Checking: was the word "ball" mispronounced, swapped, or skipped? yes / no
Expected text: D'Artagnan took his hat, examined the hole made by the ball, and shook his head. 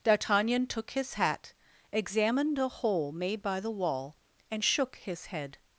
yes